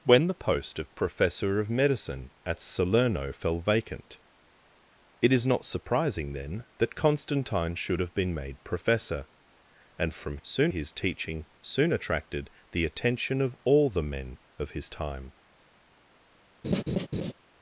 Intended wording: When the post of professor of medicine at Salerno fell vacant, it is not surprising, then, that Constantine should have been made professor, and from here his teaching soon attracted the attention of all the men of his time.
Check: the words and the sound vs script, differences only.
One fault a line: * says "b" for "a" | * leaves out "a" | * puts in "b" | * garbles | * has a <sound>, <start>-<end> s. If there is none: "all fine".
* says "soon" for "here"
* has a laugh, 16.6-17.3 s